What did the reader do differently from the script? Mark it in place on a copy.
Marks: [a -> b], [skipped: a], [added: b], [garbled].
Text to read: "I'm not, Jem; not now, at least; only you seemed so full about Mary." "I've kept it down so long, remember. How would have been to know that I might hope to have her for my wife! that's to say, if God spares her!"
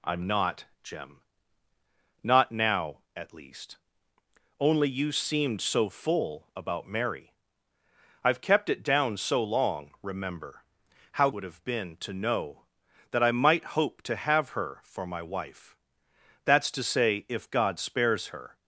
"I'm not, Jem; not now, at least; only you seemed so full about Mary." "I've kept it down so long, remember. How would have been to know that I might hope to have her for my wife! that's to say, if God spares her!"